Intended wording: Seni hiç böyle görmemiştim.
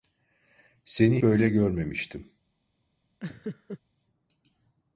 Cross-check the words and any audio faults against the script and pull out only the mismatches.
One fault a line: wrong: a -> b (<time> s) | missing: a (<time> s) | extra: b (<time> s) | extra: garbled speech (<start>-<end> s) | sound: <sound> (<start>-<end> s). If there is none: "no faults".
missing: hiç (1.2 s)
sound: laugh (3.2-3.8 s)